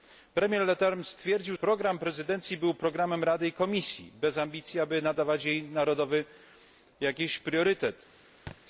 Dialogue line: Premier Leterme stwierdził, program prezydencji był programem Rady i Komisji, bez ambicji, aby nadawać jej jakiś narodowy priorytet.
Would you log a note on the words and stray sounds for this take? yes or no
yes